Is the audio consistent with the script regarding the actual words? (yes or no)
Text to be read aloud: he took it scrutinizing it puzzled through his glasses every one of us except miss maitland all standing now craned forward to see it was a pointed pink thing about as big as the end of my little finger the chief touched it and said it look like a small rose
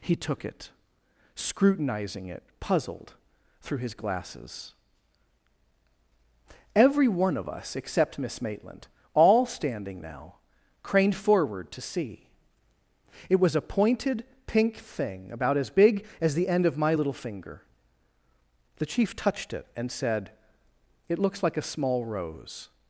no